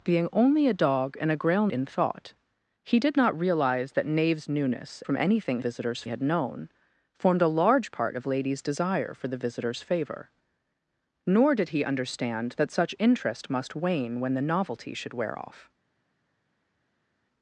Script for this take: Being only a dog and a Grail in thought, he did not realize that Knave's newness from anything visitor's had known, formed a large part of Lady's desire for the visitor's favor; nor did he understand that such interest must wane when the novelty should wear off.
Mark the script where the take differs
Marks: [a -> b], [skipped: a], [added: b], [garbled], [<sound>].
Being only a dog and a Grail in thought, he did not realize that Knave's newness from anything visitor's had known, formed a large part of Lady's desire for the visitor's favor; nor did he understand that such interest must wane when the novelty should wear off.